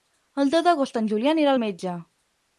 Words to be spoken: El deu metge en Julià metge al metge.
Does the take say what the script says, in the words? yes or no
no